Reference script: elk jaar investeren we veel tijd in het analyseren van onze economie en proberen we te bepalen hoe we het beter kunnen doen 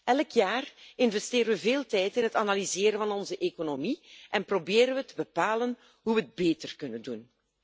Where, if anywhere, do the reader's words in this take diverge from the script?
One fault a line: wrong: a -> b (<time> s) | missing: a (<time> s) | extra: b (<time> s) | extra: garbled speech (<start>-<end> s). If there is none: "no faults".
no faults